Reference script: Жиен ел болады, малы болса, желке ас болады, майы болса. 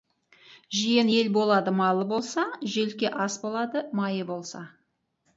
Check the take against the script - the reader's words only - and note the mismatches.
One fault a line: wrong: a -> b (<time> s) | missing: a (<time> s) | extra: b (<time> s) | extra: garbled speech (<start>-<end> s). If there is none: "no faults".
no faults